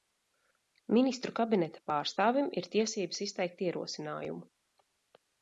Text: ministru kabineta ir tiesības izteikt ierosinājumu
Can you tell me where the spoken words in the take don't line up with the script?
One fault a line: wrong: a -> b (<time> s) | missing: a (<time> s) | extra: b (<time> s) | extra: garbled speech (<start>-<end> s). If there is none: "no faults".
extra: pārstāvim (1.9 s)